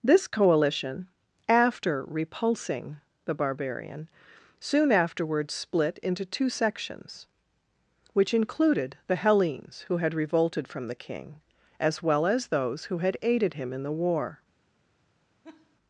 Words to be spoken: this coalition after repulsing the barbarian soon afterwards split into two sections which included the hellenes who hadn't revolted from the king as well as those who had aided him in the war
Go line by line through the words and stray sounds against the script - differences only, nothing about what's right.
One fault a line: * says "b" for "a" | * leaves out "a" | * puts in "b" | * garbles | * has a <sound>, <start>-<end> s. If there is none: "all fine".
* says "had" for "hadn't"
* has a laugh, 15.4-15.8 s